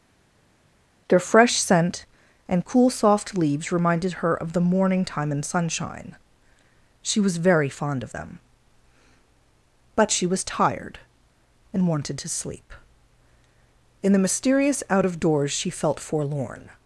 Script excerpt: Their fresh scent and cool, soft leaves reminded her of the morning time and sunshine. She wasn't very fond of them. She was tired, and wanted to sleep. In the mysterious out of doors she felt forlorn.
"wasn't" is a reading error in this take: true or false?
true